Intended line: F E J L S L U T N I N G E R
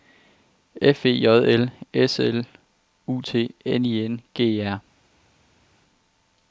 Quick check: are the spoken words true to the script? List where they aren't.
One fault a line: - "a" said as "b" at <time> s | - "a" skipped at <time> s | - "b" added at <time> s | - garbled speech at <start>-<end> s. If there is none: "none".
none